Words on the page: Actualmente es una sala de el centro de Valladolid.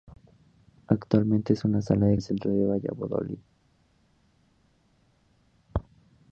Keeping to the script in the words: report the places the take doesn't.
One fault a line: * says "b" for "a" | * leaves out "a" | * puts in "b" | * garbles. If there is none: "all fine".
all fine